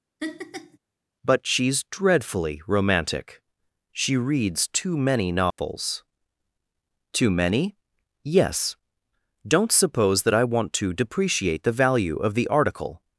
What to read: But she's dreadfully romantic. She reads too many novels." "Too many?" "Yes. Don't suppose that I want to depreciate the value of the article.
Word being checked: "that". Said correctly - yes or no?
yes